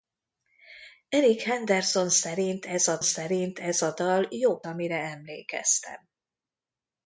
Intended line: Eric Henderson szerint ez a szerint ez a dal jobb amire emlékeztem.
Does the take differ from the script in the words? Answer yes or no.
no